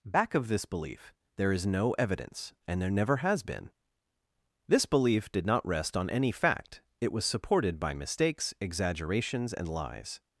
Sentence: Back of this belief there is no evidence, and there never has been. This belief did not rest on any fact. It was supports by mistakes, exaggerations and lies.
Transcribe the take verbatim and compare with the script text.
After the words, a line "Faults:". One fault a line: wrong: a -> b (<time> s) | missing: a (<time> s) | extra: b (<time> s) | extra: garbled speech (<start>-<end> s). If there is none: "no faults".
Back of this belief there is no evidence, and there never has been. This belief did not rest on any fact. It was supported by mistakes, exaggerations and lies.
Faults:
wrong: supports -> supported (7.2 s)